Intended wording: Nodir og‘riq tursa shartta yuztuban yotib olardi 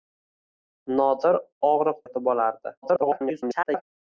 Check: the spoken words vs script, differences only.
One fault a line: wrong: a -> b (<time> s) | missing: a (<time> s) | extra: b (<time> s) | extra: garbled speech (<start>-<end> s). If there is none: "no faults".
missing: tursa shartta yuztuban (2.0 s)
extra: garbled speech (2.8-3.8 s)